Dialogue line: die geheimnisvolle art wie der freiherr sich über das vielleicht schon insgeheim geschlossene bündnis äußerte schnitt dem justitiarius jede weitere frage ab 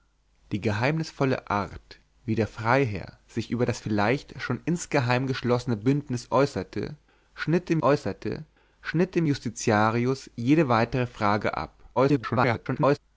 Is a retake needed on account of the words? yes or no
yes